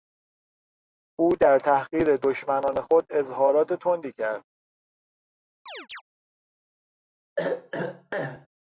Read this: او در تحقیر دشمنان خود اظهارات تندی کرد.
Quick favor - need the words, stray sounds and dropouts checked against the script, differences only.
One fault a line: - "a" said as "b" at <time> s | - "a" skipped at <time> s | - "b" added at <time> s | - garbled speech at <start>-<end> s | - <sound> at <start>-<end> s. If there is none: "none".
- chirp at 5.7-6.0 s
- throat clearing at 7.4-8.5 s